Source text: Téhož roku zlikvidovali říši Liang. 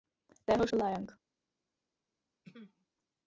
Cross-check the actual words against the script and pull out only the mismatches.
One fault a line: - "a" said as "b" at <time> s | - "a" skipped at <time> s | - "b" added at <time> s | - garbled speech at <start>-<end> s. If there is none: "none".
- "roku zlikvidovali říši" skipped at 0.7 s